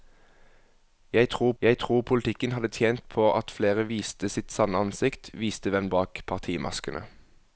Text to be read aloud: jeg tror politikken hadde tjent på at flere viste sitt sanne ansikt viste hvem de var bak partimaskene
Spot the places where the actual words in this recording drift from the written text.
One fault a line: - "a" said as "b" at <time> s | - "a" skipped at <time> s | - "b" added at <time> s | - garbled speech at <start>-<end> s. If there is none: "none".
- "jeg tror" added at 1.6 s
- "de var" skipped at 5.9 s